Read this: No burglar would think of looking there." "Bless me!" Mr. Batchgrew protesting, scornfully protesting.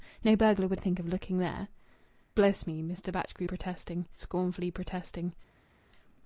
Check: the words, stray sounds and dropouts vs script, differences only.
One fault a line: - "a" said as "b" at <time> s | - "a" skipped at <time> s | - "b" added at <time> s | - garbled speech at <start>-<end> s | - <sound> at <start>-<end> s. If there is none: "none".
none